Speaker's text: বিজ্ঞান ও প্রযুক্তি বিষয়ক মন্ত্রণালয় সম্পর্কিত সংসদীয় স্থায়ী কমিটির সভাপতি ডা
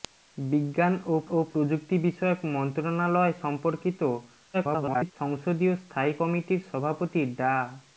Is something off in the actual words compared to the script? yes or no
yes